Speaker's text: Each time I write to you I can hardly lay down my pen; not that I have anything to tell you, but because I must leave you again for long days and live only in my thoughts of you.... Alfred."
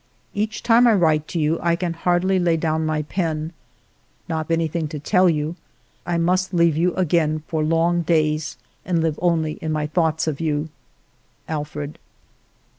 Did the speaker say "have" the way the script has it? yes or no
no